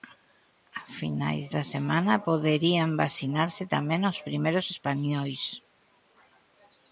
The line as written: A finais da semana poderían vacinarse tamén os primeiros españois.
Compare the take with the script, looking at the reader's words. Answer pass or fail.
pass